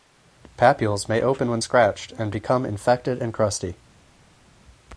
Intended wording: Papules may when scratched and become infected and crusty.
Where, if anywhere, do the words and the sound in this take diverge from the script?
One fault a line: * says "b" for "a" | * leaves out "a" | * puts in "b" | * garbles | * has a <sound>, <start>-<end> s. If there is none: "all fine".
* puts in "open"